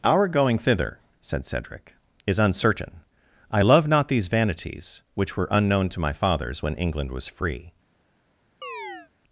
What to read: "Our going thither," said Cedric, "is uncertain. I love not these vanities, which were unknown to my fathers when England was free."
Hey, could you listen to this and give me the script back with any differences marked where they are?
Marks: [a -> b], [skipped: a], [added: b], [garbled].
"Our going thither," said Cedric, "is uncertain. I love not these vanities, which were unknown to my fathers when England was free."